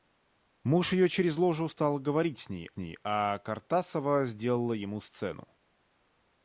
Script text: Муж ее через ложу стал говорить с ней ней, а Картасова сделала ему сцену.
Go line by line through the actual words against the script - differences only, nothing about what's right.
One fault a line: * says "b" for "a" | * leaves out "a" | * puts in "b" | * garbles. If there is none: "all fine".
all fine